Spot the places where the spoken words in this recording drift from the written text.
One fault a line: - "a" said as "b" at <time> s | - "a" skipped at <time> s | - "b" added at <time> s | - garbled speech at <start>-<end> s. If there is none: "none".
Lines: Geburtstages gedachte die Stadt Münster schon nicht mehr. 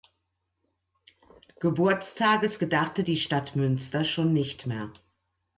none